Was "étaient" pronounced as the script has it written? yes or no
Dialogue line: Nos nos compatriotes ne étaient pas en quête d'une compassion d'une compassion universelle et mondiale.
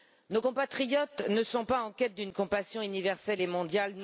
no